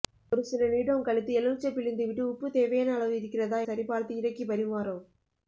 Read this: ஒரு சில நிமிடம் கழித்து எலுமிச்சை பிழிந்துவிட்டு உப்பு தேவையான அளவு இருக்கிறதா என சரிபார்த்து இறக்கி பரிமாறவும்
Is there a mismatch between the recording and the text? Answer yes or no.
yes